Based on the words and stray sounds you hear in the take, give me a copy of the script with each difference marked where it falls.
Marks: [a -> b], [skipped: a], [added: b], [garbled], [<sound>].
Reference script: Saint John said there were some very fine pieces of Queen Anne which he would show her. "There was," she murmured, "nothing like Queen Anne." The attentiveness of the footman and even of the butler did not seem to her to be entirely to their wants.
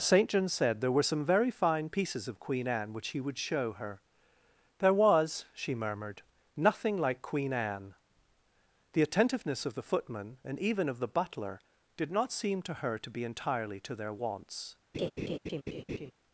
Saint John said there were some very fine pieces of Queen Anne which he would show her. "There was," she murmured, "nothing like Queen Anne." The attentiveness of the footman and even of the butler did not seem to her to be entirely to their wants. [laugh]